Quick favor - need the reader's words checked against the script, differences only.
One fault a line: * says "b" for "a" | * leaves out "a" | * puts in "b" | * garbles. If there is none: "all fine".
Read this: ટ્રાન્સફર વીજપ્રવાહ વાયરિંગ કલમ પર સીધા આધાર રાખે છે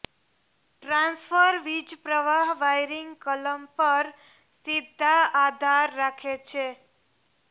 all fine